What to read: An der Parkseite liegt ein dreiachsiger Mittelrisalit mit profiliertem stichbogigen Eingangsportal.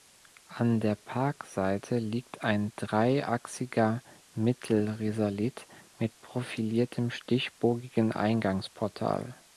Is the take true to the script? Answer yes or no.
yes